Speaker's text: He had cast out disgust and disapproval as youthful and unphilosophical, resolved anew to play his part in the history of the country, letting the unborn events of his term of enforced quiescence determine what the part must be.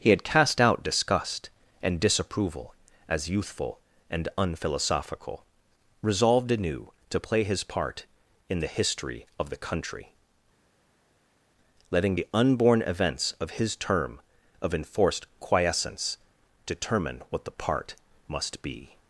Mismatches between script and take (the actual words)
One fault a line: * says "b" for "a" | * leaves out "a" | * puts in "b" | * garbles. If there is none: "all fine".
all fine